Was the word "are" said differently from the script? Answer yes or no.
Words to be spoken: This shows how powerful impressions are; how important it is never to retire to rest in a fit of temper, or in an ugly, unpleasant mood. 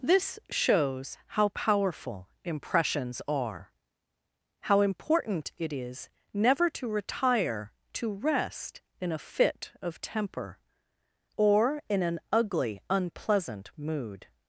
no